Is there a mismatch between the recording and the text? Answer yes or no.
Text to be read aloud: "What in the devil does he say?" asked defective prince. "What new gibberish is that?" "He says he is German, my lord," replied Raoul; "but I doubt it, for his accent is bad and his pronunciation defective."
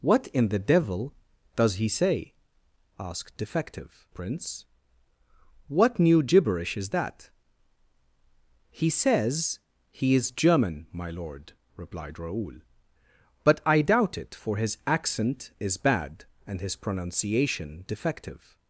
no